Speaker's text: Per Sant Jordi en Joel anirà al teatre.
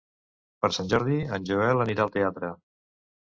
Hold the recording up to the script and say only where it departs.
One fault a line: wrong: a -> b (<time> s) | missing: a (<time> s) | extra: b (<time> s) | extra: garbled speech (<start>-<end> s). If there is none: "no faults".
no faults